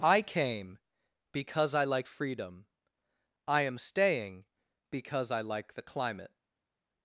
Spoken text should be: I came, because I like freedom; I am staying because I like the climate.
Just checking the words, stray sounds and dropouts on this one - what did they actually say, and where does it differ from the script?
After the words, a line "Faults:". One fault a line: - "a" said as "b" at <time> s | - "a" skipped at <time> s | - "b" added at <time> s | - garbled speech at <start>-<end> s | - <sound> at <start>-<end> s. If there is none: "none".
I came, because I like freedom; I am staying because I like the climate.
Faults:
none